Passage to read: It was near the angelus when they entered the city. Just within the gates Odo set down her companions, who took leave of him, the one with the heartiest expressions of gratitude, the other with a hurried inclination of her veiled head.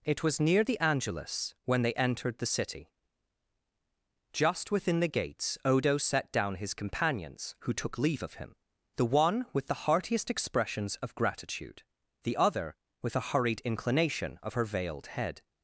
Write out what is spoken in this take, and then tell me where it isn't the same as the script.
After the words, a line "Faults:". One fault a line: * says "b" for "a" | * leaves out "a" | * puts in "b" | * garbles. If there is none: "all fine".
It was near the angelus when they entered the city. Just within the gates Odo set down his companions, who took leave of him, the one with the heartiest expressions of gratitude, the other with a hurried inclination of her veiled head.
Faults:
* says "his" for "her"